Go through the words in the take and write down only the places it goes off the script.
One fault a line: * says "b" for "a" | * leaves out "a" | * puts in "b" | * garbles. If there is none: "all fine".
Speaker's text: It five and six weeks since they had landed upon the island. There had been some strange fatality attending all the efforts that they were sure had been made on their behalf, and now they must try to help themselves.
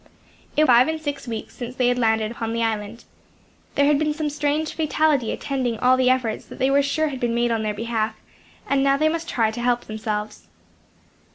all fine